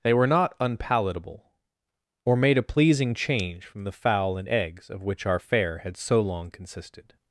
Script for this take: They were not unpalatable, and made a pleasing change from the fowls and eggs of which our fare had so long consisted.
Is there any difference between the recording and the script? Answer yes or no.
yes